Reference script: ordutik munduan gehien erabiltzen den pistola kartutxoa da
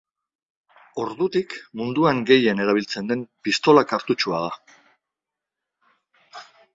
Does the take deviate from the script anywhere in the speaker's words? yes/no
no